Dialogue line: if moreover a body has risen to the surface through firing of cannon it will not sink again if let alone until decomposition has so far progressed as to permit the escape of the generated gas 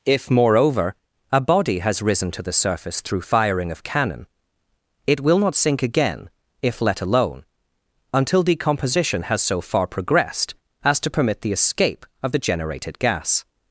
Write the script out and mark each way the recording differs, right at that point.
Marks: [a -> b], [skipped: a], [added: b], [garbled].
if moreover a body has risen to the surface through firing of cannon it will not sink again if let alone until decomposition has so far progressed as to permit the escape of the generated gas